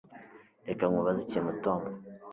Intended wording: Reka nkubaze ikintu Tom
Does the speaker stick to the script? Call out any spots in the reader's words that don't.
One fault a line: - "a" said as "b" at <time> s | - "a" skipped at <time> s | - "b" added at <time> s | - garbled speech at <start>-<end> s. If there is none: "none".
none